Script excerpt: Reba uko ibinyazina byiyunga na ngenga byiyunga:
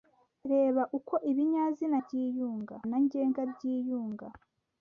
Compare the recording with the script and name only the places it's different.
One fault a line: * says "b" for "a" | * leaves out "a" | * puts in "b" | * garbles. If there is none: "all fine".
all fine